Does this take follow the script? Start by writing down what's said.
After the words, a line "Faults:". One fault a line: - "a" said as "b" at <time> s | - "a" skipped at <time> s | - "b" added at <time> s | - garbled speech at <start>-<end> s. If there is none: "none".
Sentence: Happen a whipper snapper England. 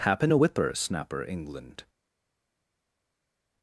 Happen a whipper snapper England.
Faults:
none